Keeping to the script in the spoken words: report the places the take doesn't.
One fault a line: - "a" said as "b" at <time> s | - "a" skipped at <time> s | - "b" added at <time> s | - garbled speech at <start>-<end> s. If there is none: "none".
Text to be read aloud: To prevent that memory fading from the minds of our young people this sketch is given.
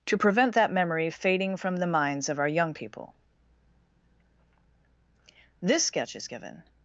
none